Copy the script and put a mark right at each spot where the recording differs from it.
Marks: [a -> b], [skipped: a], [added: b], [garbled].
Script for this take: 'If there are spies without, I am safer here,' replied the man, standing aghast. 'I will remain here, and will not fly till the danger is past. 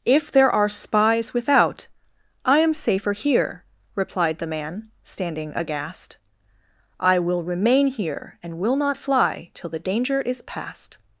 'If there are spies without, I am safer here,' replied the man, standing aghast. 'I will remain here, and will not fly till the danger is past.